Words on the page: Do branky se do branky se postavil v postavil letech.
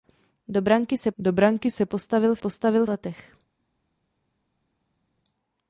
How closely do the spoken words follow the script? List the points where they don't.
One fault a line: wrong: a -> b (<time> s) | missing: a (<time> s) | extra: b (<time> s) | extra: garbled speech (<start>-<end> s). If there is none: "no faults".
no faults